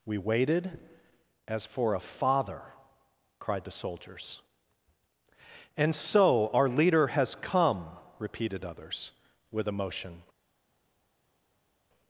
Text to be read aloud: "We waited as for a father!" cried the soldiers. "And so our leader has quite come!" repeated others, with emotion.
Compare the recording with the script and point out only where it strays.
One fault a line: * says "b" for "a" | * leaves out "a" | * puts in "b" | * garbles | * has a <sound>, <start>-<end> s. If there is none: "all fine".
* leaves out "quite"